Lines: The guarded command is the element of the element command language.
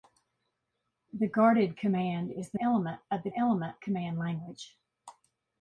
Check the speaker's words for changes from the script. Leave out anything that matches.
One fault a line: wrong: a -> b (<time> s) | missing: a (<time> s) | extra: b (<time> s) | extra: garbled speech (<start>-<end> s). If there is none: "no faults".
no faults